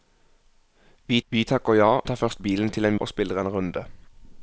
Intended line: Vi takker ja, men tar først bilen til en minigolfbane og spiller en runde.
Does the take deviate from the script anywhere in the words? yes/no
yes